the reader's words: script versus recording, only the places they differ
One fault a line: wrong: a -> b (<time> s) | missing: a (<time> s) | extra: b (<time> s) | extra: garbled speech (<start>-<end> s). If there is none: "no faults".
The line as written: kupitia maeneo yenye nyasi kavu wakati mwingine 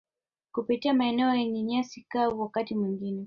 no faults